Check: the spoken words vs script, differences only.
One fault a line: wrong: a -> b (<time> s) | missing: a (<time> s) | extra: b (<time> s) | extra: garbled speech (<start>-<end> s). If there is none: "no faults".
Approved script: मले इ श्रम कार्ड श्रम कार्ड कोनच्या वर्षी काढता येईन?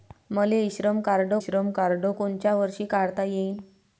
no faults